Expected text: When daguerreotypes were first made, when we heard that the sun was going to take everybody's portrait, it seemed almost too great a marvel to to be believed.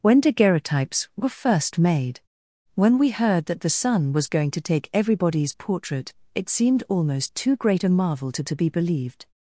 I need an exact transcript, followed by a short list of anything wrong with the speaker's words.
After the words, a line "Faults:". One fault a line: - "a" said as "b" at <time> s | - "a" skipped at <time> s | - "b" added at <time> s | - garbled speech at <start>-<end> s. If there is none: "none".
When daguerreotypes were first made, when we heard that the sun was going to take everybody's portrait, it seemed almost too great a marvel to to be believed.
Faults:
none